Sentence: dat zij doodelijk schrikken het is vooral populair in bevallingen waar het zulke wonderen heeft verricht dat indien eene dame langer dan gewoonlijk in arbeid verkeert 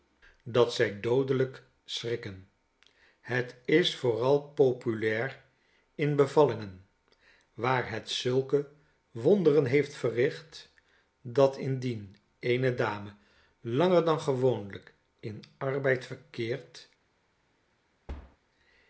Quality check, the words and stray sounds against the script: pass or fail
fail